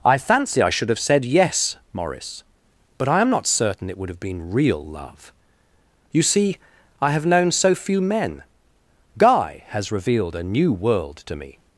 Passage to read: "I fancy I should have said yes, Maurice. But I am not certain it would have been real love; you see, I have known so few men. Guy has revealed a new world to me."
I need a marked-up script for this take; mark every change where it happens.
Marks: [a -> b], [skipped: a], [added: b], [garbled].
"I fancy I should have said yes, Maurice. But I am not certain it would have been real love; you see, I have known so few men. Guy has revealed a new world to me."